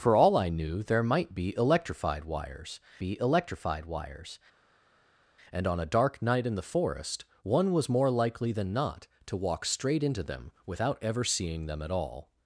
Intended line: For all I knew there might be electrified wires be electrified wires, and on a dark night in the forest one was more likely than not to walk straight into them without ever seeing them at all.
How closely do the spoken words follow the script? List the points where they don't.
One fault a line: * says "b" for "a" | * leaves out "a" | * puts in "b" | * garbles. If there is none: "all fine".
all fine